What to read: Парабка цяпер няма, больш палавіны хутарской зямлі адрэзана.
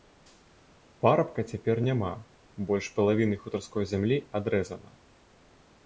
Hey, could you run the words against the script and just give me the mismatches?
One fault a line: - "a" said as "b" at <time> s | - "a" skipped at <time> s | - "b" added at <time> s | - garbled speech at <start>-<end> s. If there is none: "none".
none